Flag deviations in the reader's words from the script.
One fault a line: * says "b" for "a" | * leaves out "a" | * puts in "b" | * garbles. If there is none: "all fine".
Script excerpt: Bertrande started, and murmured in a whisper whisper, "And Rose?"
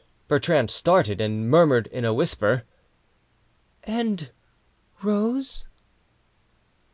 * leaves out "whisper"